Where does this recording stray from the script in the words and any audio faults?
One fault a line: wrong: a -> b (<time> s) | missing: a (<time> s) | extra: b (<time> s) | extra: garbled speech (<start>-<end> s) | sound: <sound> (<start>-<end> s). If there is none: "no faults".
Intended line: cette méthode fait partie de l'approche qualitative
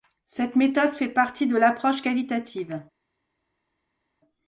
no faults